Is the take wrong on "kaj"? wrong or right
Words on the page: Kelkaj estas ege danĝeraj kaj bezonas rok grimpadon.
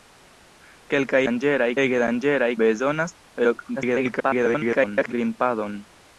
wrong